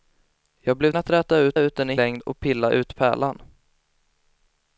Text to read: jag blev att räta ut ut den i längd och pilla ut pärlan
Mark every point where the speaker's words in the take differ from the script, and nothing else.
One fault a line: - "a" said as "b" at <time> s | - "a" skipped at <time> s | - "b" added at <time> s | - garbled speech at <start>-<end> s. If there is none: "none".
none